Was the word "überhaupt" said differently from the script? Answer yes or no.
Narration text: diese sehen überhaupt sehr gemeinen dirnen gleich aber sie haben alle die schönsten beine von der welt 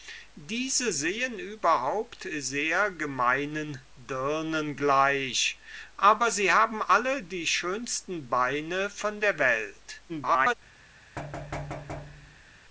no